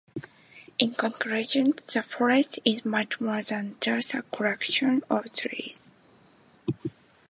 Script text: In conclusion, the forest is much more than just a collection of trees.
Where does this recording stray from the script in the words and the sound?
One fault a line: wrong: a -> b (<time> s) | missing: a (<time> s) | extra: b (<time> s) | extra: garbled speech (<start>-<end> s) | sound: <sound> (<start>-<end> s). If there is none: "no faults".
no faults